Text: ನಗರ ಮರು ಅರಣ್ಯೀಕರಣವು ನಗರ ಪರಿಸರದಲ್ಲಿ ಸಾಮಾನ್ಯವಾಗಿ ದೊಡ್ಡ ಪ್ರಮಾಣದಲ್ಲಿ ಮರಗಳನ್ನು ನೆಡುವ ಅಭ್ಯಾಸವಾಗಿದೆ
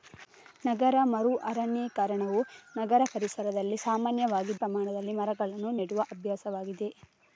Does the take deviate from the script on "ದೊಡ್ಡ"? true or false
true